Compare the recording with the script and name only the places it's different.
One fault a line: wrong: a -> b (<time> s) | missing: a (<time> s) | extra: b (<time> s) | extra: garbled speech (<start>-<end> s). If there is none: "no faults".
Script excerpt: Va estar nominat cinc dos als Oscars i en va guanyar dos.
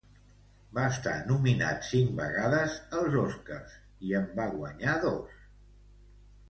wrong: dos -> vegades (2.2 s)